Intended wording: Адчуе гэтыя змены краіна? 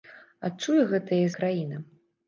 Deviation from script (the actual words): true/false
true